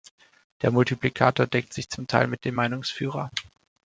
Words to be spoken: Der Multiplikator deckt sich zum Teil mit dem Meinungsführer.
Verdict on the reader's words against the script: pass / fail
pass